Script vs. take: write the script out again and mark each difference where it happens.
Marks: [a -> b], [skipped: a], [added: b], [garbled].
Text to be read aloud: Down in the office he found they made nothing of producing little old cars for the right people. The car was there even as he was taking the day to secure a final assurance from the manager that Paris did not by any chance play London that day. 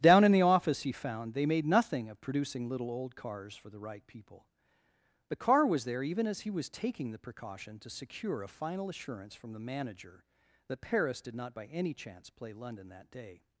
Down in the office he found they made nothing of producing little old cars for the right people. The car was there even as he was taking the [day -> precaution] to secure a final assurance from the manager that Paris did not by any chance play London that day.